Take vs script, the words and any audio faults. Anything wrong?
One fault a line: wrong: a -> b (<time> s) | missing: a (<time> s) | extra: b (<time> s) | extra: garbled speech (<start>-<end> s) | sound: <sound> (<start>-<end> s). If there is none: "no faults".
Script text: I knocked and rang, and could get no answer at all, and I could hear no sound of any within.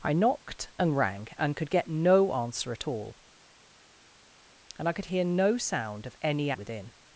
no faults